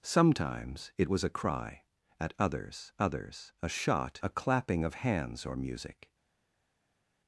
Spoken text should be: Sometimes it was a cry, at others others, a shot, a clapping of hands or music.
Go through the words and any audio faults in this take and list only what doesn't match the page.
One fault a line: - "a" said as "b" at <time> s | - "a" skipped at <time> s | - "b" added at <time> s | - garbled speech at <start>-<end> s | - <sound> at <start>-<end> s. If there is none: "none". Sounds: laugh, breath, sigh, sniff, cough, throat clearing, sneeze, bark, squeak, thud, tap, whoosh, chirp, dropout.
none